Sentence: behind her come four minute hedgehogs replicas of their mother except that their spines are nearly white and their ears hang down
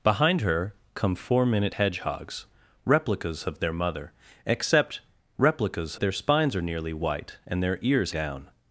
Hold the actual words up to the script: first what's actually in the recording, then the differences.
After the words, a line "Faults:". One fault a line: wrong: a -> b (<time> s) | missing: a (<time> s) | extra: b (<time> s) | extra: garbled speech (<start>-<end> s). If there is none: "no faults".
behind her come four minute hedgehogs replicas of their mother except replicas their spines are nearly white and their ears down
Faults:
wrong: that -> replicas (5.4 s)
missing: hang (8.1 s)